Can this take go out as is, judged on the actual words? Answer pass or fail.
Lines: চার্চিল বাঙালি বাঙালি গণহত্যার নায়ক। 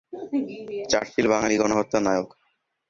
fail